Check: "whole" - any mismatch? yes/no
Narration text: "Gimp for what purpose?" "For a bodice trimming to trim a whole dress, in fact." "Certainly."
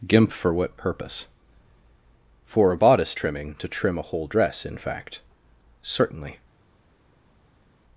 no